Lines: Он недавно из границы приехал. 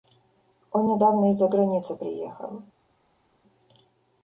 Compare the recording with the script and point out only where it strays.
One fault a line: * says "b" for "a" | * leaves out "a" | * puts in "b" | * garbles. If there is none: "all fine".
* puts in "за"